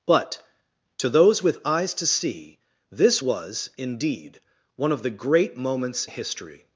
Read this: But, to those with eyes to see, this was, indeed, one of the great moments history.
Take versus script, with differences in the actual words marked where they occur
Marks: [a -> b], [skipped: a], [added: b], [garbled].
But, to those with eyes to see, this was, indeed, one of the great moments history.